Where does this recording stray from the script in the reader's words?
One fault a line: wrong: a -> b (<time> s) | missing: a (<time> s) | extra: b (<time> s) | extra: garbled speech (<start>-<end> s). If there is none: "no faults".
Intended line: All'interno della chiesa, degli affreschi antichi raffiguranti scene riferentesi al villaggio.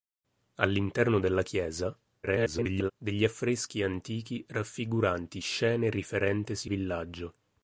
extra: garbled speech (2.2-2.9 s)
missing: al (6.7 s)